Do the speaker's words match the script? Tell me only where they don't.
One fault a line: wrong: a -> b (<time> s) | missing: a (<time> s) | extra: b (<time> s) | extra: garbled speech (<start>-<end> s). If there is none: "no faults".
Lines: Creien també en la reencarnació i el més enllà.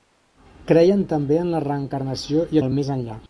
no faults